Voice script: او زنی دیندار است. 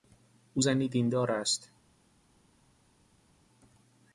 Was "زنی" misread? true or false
false